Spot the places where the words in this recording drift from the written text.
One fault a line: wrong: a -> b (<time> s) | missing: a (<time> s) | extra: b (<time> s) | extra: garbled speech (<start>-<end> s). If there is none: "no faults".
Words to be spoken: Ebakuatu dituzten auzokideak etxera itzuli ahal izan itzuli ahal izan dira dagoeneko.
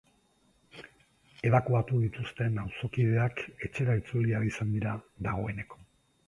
missing: itzuli ahal izan (4.7 s)